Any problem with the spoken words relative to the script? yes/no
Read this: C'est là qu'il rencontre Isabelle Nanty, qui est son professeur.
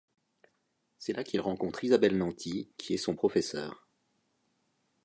no